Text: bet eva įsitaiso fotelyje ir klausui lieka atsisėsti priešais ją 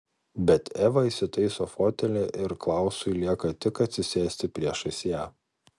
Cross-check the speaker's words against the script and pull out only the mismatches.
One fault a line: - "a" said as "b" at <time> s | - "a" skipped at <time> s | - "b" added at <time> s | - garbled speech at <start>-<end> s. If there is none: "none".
- "tik" added at 3.7 s